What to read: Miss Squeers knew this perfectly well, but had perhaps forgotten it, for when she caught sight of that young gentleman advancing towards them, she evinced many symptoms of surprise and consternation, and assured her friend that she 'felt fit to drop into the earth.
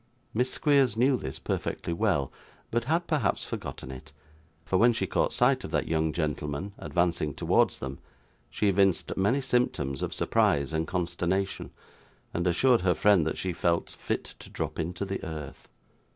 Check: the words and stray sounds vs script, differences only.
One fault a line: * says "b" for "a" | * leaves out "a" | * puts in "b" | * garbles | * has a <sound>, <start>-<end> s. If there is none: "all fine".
all fine